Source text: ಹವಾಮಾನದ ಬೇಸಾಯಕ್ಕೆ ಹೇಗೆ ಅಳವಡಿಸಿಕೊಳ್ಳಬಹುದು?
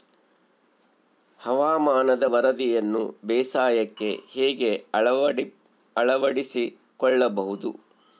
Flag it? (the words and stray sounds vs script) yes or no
yes